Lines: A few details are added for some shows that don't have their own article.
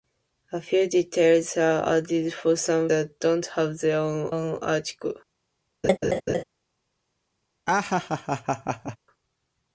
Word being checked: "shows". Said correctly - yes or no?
no